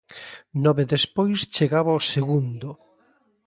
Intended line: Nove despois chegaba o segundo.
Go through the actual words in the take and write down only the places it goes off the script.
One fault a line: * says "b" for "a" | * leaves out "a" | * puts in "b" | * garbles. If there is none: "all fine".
all fine